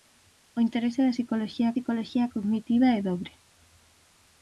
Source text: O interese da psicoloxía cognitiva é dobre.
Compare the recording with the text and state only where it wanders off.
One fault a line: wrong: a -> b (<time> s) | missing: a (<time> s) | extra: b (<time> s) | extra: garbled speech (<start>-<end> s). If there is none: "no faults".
extra: psicoloxía (1.7 s)